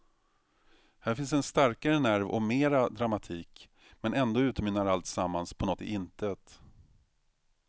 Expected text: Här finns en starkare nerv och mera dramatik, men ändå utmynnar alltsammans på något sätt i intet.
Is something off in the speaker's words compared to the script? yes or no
yes